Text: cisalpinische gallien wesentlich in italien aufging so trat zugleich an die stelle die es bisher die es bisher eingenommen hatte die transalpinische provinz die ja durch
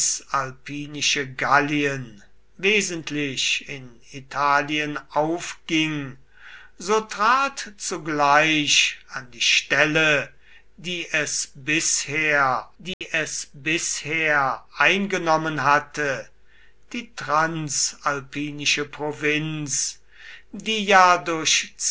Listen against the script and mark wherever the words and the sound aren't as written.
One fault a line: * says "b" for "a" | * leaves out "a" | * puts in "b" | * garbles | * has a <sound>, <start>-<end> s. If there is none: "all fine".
* has a dropout, 12.9-13.0 s